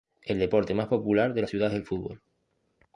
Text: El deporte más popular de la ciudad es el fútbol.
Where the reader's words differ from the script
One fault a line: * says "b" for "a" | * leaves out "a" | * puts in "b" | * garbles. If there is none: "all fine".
all fine